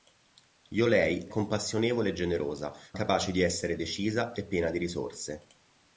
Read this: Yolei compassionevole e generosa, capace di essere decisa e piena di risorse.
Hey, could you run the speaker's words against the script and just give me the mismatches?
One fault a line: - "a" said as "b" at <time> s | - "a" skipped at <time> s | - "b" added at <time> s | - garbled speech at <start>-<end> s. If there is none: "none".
none